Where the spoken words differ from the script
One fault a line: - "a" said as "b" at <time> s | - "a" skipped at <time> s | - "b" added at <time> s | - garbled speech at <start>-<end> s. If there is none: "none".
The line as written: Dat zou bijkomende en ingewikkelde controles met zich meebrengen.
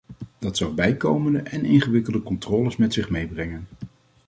none